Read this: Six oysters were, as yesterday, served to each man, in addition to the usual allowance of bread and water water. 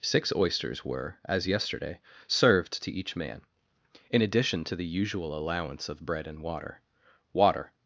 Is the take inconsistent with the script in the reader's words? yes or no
no